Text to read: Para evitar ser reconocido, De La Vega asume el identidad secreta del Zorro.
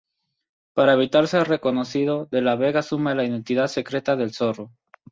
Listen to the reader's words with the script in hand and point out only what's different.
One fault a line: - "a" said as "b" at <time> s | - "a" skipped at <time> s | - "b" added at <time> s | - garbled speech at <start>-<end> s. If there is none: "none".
- "el" said as "la" at 3.1 s